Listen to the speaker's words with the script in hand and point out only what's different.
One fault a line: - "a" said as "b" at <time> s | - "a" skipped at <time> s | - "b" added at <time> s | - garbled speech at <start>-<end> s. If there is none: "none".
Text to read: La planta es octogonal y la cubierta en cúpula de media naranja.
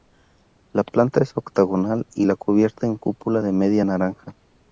none